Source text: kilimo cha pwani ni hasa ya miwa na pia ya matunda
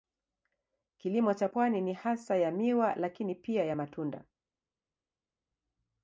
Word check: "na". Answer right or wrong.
wrong